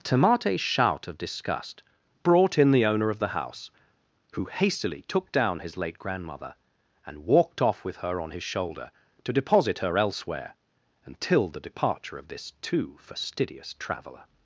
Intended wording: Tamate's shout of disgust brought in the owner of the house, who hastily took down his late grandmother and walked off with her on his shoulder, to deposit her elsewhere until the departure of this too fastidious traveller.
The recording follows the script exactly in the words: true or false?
true